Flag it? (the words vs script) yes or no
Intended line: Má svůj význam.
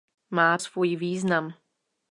no